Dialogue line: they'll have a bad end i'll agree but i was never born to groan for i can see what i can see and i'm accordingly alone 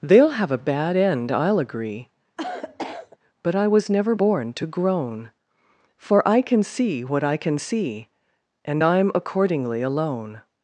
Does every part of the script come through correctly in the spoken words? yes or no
yes